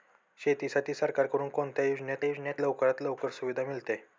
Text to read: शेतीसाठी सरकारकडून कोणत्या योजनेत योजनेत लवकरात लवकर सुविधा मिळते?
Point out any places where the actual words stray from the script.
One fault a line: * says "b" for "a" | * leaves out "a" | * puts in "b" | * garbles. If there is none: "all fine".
all fine